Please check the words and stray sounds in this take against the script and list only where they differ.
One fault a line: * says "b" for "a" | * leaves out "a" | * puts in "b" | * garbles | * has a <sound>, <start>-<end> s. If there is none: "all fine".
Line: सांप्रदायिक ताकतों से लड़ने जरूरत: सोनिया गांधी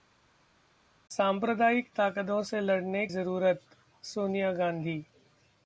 all fine